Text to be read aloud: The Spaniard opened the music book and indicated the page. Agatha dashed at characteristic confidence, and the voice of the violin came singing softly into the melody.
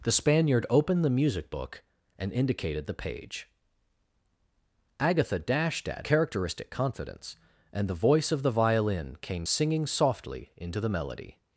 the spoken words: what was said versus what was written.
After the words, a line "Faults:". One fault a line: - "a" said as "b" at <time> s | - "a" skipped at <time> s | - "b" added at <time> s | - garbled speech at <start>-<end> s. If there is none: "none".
The Spaniard opened the music book and indicated the page. Agatha dashed at characteristic confidence, and the voice of the violin came singing softly into the melody.
Faults:
none